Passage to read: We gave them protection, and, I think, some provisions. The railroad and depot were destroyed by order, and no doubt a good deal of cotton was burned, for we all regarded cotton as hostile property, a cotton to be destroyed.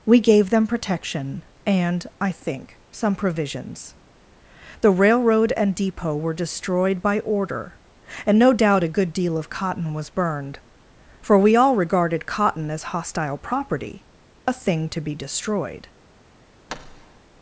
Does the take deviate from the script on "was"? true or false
false